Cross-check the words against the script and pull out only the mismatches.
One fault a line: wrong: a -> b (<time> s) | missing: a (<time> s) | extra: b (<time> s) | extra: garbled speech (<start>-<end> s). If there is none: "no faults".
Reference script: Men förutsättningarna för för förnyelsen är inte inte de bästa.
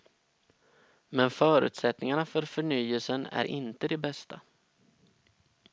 missing: för (2.4 s)
missing: inte (3.9 s)